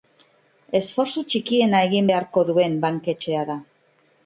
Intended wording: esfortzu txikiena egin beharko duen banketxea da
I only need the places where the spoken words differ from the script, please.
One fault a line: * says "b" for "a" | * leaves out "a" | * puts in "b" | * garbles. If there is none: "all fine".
all fine